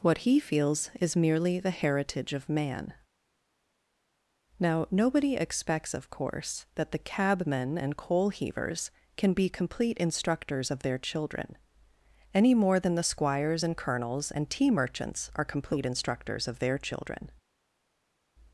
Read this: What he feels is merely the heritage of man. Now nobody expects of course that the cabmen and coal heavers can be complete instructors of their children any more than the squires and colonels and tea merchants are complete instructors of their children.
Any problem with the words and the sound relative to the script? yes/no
no